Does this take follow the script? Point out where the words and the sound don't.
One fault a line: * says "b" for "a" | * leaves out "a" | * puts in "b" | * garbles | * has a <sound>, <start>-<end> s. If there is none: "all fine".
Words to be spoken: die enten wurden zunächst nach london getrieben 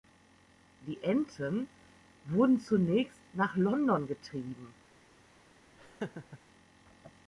* has a laugh, 5.8-6.4 s